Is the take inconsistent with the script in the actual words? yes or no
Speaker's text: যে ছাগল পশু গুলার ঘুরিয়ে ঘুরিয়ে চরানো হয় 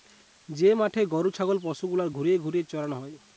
yes